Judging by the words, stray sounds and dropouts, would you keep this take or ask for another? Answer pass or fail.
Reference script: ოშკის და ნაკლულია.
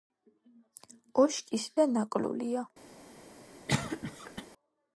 fail